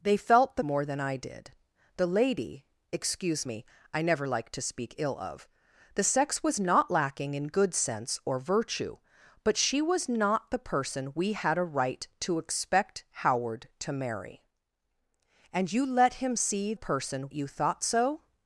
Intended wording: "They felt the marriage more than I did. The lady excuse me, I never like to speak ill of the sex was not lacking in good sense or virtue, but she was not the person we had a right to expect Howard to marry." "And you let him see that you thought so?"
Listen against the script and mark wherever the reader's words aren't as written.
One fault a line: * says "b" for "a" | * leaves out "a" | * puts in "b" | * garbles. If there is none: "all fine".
* leaves out "marriage"
* says "person" for "that"